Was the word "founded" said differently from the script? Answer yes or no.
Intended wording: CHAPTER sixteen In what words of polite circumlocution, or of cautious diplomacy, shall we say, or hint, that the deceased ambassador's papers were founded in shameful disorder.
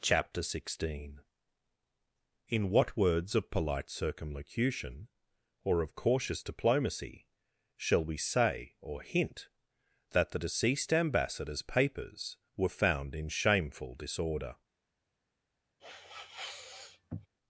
yes